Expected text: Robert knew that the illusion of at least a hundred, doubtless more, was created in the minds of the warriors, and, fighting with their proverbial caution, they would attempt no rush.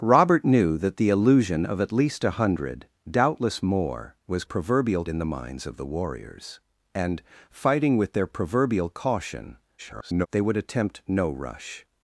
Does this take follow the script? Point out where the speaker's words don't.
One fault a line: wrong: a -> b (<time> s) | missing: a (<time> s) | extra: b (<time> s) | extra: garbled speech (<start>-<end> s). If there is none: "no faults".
wrong: created -> proverbial (4.4 s)
extra: garbled speech (9.8-10.3 s)